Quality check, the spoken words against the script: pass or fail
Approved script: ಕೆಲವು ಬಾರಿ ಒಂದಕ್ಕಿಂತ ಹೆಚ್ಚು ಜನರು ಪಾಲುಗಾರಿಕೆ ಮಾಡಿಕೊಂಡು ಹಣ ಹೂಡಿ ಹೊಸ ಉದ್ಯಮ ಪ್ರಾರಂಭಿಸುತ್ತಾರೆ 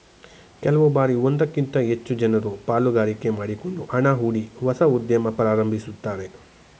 pass